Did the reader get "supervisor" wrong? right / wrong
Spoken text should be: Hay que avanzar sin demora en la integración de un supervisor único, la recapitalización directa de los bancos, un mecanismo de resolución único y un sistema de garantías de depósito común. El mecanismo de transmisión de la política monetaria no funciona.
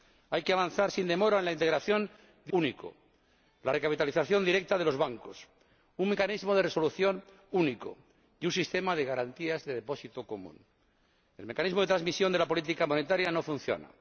wrong